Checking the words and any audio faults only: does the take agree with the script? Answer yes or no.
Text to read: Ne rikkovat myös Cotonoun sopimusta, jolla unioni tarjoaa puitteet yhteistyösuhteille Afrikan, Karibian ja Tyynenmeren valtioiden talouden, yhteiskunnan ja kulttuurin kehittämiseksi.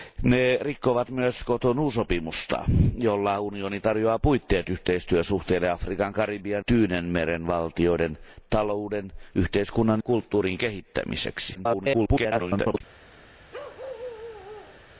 no